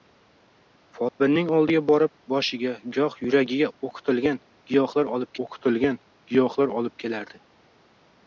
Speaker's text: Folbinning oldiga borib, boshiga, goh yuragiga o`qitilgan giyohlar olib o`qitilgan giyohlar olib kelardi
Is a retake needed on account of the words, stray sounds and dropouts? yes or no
yes